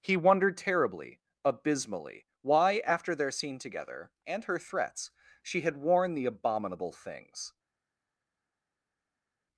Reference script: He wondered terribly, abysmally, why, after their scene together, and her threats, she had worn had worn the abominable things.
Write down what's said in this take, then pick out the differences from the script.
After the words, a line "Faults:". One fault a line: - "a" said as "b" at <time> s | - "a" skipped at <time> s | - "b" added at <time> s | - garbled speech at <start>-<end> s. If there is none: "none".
He wondered terribly, abysmally, why, after their scene together, and her threats, she had worn the abominable things.
Faults:
- "had worn" skipped at 6.2 s